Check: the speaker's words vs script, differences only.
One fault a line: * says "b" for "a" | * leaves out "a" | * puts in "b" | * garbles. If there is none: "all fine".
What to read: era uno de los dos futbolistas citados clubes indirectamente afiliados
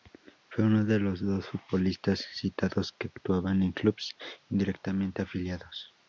* says "fue" for "era"
* puts in "que actuaban en"